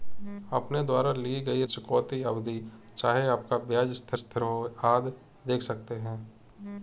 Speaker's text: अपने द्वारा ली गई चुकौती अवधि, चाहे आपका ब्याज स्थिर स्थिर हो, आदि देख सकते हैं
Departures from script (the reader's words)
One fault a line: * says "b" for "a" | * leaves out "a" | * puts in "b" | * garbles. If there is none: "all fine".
all fine